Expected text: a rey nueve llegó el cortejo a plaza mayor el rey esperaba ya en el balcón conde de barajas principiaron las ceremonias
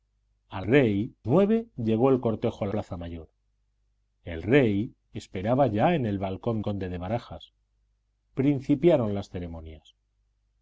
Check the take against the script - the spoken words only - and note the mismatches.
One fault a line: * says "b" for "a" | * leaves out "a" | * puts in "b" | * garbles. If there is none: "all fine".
all fine